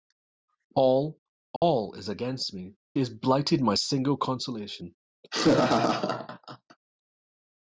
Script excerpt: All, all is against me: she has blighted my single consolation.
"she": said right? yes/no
no